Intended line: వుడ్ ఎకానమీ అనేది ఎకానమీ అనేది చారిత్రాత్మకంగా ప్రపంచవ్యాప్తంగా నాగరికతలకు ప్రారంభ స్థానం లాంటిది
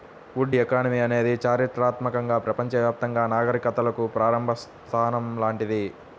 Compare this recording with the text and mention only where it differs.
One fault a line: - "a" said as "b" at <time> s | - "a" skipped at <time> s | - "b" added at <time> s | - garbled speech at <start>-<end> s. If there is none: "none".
- "ఎకానమీ అనేది" skipped at 1.3 s